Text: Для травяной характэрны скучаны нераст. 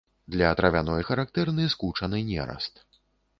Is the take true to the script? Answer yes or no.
yes